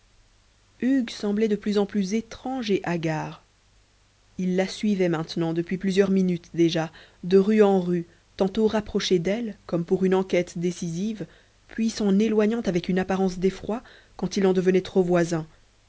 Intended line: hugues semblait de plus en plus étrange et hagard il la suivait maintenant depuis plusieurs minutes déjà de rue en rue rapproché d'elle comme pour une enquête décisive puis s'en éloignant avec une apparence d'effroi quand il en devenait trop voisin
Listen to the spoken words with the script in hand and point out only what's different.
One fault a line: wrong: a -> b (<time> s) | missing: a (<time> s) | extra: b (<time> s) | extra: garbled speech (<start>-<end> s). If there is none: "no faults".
extra: tantôt (8.4 s)